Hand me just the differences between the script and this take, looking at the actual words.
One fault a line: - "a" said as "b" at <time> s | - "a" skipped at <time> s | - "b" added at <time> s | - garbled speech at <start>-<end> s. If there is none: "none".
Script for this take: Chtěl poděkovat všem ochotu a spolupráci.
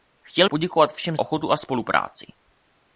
none